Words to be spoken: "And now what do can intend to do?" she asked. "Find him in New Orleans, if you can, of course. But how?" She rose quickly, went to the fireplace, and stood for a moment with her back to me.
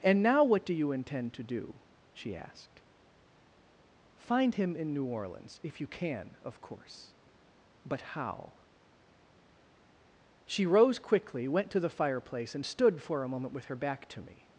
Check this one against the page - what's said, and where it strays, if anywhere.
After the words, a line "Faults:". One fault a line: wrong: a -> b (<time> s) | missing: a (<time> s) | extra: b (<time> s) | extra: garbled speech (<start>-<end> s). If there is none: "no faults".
"And now what do you intend to do?" she asked. "Find him in New Orleans, if you can, of course. But how?" She rose quickly, went to the fireplace, and stood for a moment with her back to me.
Faults:
wrong: can -> you (0.7 s)